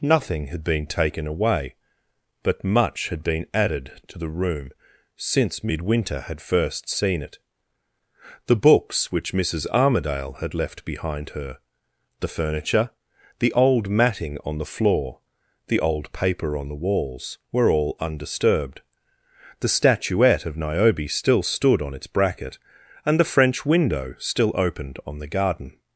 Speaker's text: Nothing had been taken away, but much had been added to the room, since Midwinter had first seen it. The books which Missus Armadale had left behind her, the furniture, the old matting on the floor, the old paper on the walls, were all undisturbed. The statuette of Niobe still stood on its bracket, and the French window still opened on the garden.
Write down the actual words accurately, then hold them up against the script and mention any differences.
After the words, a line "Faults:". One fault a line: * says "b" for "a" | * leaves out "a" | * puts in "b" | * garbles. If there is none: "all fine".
Nothing had been taken away, but much had been added to the room, since Midwinter had first seen it. The books which Missus Armadale had left behind her, the furniture, the old matting on the floor, the old paper on the walls, were all undisturbed. The statuette of Niobe still stood on its bracket, and the French window still opened on the garden.
Faults:
all fine